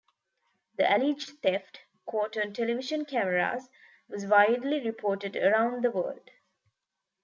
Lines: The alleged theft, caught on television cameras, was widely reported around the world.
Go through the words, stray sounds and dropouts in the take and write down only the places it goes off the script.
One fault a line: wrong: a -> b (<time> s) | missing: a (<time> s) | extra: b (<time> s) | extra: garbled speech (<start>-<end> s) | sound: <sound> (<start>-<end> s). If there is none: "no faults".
no faults